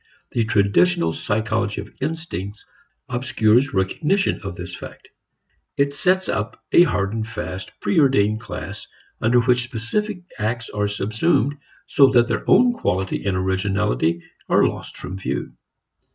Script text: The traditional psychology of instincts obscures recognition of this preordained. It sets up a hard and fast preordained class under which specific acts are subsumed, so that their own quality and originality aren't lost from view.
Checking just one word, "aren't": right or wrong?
wrong